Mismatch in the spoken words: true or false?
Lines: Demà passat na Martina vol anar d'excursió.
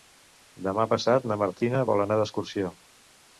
false